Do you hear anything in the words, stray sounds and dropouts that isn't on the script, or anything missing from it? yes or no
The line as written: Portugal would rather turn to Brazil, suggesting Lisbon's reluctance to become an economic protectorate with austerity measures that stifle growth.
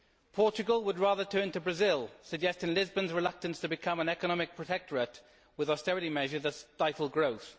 no